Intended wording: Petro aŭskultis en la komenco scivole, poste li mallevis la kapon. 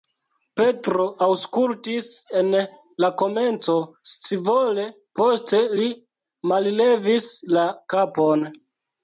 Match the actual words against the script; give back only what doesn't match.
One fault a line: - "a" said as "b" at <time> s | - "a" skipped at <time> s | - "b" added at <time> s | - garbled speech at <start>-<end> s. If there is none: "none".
none